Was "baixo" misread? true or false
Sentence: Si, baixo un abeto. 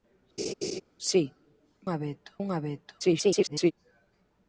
true